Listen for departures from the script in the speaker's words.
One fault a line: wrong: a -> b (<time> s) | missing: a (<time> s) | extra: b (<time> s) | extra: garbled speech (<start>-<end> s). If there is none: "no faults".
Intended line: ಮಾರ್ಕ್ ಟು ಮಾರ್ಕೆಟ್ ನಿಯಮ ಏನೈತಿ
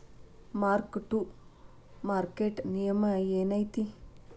no faults